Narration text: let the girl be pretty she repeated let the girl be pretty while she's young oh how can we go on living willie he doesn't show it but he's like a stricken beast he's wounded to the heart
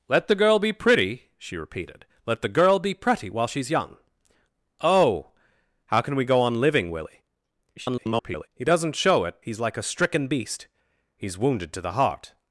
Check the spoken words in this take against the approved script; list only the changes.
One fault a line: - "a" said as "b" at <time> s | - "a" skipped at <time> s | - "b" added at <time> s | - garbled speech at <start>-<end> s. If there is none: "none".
- garbled speech at 7.8-8.5 s
- "but" skipped at 9.4 s